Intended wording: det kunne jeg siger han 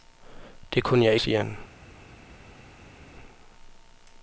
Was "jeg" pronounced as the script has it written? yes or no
yes